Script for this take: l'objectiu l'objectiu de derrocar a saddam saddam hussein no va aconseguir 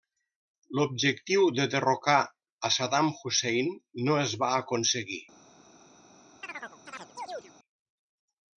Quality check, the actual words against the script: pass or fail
fail